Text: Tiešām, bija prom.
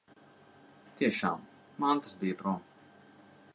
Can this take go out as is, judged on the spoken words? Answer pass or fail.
fail